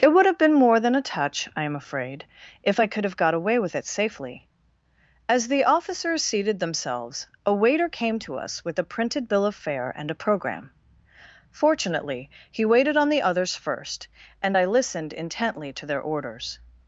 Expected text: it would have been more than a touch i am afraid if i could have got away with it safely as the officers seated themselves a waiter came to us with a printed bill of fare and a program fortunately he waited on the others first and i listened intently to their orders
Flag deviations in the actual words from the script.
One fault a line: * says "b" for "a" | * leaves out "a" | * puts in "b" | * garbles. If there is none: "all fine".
all fine